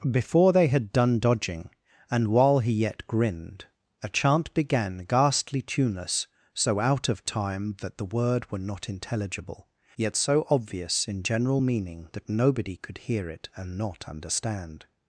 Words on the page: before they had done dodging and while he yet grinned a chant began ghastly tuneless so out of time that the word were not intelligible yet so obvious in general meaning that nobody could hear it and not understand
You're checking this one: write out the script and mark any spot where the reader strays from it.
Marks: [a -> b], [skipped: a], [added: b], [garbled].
before they had done dodging and while he yet grinned a chant began ghastly tuneless so out of time that the word were not intelligible yet so obvious in general meaning that nobody could hear it and not understand